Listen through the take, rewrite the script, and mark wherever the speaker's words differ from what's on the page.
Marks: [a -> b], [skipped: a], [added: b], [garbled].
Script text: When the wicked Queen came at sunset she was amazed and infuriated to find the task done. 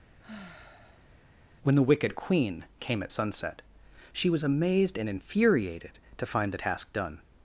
When the wicked Queen came at sunset she was amazed and infuriated to find the task done.